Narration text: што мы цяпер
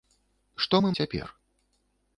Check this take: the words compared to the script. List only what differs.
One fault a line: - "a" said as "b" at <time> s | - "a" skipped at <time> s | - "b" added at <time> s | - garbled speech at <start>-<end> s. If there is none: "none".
none